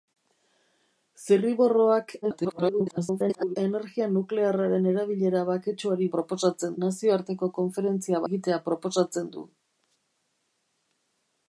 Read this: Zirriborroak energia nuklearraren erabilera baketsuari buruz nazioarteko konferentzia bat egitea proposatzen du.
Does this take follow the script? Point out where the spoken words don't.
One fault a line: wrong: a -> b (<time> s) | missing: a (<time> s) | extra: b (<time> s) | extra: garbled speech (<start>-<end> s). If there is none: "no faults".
extra: garbled speech (2.2-3.6 s)
wrong: buruz -> proposatzen (6.2 s)
missing: bat (8.2 s)